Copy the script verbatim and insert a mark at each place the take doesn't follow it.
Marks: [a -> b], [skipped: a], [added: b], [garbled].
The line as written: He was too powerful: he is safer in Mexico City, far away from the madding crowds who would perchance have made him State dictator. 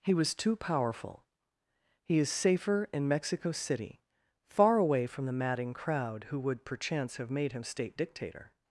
He was too powerful: he is safer in Mexico City, far away from the madding [crowds -> crowd] who would perchance have made him State dictator.